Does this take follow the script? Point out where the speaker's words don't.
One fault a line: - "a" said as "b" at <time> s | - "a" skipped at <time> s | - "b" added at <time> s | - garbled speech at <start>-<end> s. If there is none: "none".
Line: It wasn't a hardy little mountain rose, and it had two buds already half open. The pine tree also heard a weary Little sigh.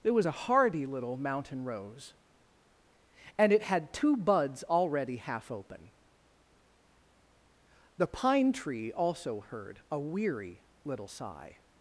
- "wasn't" said as "was" at 0.1 s